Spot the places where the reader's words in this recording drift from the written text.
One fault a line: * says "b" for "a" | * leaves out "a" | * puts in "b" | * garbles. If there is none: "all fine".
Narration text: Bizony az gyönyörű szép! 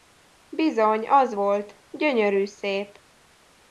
* puts in "volt"